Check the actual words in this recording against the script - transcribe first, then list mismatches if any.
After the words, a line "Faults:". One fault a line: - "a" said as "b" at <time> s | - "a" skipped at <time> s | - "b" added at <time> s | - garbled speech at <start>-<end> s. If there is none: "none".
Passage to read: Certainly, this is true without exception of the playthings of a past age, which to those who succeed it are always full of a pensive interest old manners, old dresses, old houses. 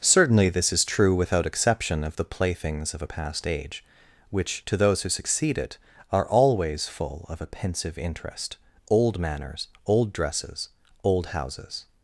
Certainly, this is true without exception of the playthings of a past age, which to those who succeed it are always full of a pensive interest old manners, old dresses, old houses.
Faults:
none